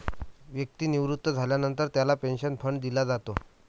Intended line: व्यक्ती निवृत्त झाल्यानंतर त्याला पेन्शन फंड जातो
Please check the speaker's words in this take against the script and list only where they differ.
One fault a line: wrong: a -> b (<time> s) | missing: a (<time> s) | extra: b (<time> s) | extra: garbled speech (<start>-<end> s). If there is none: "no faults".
extra: दिला (2.8 s)